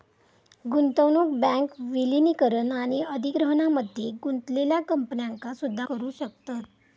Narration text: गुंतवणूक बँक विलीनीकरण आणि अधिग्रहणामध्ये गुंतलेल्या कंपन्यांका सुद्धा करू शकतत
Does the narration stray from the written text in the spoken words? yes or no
no